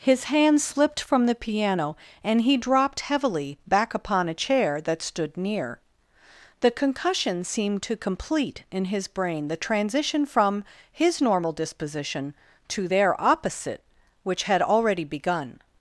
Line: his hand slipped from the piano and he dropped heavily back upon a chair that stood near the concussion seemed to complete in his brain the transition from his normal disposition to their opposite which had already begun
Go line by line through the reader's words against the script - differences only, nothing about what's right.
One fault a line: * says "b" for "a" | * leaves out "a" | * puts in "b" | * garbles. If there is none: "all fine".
all fine